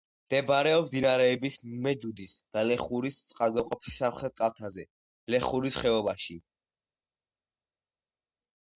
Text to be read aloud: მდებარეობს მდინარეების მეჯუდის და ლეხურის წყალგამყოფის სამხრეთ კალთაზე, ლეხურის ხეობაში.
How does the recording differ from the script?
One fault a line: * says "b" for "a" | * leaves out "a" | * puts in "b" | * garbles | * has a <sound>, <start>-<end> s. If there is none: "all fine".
all fine